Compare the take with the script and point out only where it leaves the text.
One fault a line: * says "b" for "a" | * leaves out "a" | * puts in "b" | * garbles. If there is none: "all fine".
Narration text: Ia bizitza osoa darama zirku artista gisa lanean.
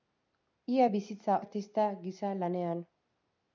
* leaves out "osoa darama zirku"